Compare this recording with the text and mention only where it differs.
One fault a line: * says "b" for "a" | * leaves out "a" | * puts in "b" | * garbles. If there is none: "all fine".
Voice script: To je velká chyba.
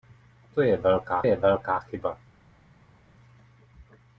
* puts in "je velká"